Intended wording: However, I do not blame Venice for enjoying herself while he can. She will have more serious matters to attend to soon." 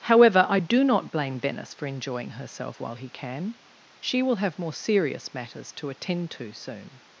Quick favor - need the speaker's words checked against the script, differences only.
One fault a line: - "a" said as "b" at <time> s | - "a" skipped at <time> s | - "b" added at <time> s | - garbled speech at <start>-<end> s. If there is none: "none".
none